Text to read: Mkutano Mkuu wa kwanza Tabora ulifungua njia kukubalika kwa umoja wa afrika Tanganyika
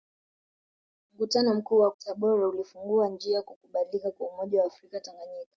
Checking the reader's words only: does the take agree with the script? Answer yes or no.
no